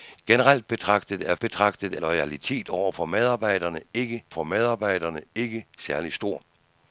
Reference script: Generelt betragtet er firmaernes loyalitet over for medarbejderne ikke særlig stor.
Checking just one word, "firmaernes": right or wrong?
wrong